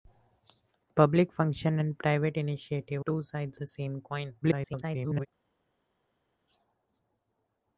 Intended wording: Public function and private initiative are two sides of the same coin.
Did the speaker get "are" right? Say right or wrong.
wrong